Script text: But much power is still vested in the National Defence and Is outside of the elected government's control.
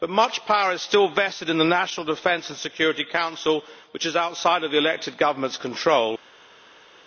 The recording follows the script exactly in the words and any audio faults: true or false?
false